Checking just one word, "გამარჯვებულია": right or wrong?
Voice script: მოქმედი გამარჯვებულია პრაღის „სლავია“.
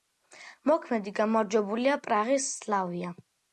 right